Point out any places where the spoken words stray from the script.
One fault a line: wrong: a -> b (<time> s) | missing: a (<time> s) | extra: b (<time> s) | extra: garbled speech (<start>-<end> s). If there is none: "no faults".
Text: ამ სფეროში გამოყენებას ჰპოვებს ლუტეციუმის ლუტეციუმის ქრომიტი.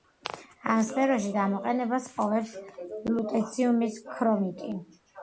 missing: ლუტეციუმის (4.0 s)